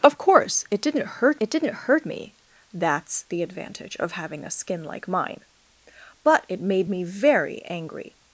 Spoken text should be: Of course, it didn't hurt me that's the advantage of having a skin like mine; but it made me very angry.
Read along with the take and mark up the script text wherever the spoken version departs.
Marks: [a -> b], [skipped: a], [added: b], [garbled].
Of course, it didn't hurt [added: it didn't hurt] me that's the advantage of having a skin like mine; but it made me very angry.